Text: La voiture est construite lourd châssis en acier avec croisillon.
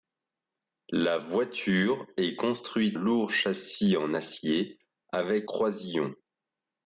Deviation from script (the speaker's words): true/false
false